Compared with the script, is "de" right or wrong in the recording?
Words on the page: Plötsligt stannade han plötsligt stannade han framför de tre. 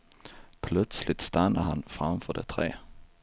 right